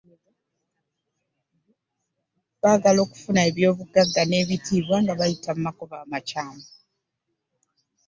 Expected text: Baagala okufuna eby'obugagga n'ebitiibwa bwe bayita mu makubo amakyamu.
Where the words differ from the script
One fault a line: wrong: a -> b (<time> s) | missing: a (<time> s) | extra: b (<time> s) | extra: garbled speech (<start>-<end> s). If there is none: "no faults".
wrong: bwe -> nga (5.0 s)